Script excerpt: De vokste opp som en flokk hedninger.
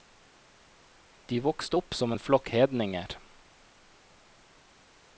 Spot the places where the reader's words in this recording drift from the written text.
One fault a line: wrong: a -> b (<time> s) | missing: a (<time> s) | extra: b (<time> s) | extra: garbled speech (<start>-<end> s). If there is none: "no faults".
no faults